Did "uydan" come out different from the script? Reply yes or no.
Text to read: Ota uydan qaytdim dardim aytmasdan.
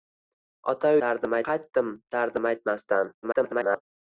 yes